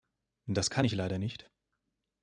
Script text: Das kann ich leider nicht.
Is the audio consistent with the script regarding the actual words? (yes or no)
yes